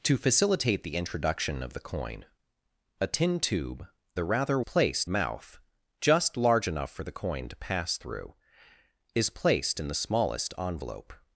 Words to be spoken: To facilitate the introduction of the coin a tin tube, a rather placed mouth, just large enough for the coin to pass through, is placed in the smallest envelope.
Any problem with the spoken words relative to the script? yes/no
no